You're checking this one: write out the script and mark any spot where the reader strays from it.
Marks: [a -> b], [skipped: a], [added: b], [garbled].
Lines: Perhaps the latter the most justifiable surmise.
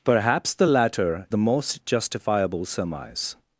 Perhaps the latter the most justifiable surmise.